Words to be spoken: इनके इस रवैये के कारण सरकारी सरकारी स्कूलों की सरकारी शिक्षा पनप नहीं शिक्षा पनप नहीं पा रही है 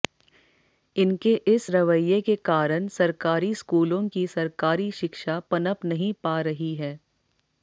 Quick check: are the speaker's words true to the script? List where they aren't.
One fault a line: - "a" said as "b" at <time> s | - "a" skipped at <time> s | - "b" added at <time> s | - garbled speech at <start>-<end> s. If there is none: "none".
- "सरकारी" skipped at 3.5 s
- "शिक्षा पनप नहीं" skipped at 6.1 s